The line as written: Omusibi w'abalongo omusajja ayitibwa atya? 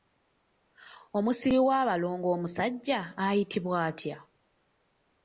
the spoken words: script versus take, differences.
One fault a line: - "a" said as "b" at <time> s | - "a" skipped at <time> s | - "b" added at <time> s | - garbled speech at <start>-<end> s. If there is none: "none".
none